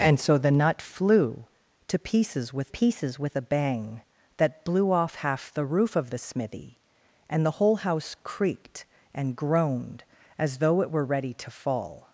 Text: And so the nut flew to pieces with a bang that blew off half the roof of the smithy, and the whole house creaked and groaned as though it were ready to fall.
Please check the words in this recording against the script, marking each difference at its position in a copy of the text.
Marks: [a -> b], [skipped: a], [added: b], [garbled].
And so the nut flew to pieces with [added: pieces with] a bang that blew off half the roof of the smithy, and the whole house creaked and groaned as though it were ready to fall.